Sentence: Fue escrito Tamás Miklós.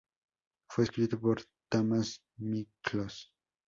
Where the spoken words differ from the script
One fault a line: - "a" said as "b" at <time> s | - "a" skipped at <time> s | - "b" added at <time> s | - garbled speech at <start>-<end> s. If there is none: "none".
- "por" added at 1.2 s